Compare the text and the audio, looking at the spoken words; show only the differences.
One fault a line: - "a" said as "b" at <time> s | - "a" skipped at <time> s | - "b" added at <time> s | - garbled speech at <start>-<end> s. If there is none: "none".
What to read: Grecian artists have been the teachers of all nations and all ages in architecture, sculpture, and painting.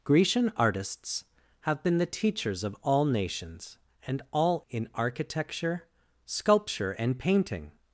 - "ages" skipped at 4.6 s